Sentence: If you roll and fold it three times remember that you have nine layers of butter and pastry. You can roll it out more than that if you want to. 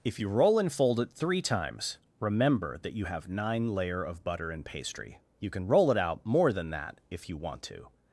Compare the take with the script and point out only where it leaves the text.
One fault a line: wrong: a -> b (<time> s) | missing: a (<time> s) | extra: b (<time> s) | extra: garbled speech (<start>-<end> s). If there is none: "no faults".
wrong: layers -> layer (3.7 s)